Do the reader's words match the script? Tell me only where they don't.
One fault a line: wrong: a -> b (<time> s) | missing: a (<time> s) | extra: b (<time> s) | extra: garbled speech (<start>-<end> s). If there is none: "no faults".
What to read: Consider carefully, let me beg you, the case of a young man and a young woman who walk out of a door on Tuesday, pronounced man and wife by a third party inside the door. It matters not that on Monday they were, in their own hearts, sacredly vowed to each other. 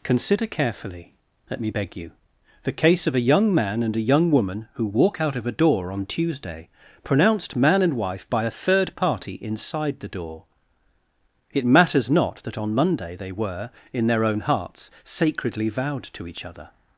no faults